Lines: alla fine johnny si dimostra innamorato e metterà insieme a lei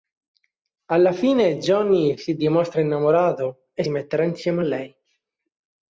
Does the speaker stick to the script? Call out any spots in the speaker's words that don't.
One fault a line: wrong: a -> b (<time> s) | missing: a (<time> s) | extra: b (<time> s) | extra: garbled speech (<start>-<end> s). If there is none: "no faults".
no faults